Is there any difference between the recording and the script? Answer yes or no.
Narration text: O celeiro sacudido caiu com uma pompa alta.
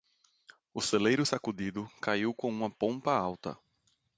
no